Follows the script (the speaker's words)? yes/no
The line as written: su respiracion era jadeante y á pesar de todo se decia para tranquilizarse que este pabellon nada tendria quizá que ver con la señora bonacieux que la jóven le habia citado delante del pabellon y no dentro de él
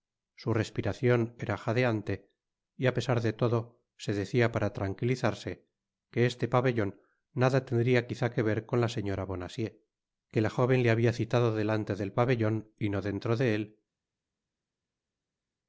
yes